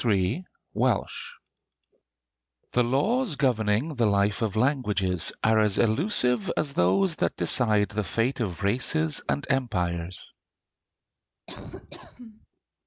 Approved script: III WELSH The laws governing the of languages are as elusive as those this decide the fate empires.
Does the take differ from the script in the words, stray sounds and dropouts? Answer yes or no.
yes